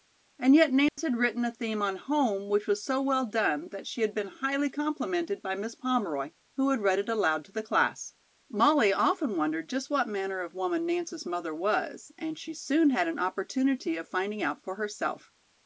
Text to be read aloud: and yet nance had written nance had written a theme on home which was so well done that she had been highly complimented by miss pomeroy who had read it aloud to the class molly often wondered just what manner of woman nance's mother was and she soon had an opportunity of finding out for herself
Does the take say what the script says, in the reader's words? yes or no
no